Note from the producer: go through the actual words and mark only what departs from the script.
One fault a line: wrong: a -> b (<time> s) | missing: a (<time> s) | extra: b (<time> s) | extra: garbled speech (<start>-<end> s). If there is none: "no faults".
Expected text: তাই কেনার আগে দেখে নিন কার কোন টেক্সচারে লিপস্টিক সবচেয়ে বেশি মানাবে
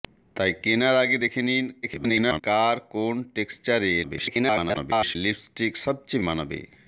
extra: garbled speech (1.8-2.4 s)
extra: garbled speech (4.0-5.2 s)
missing: বেশি (6.2 s)